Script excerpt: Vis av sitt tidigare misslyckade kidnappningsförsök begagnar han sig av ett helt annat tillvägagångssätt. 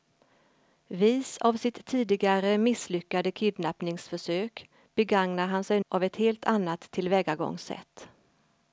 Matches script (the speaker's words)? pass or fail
pass